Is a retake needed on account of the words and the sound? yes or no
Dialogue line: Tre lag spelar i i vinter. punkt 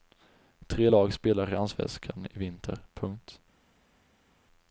yes